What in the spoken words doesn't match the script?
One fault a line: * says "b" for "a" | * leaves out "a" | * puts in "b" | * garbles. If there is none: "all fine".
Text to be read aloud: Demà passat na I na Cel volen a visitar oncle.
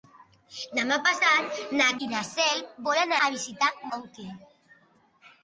all fine